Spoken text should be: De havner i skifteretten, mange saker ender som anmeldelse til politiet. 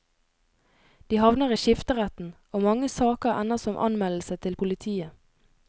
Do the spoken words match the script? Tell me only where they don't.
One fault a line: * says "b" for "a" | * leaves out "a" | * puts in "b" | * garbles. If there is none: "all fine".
* puts in "og"